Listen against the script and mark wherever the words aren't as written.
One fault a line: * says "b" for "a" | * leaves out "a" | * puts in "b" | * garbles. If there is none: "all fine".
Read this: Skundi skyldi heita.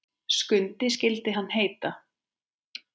* puts in "hann"